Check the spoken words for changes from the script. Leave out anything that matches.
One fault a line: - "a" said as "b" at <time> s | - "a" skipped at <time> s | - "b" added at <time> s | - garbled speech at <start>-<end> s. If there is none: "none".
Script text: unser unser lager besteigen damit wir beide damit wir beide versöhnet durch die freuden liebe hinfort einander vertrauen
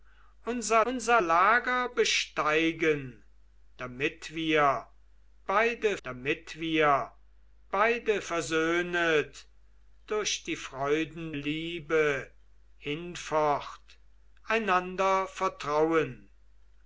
none